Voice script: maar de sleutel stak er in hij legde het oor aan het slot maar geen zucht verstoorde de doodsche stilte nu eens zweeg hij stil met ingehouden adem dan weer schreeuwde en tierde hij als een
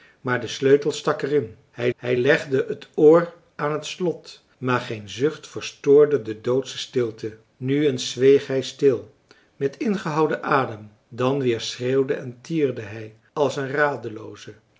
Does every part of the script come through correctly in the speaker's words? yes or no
no